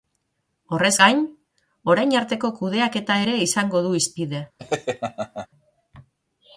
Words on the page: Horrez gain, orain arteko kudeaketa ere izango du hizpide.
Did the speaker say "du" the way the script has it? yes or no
yes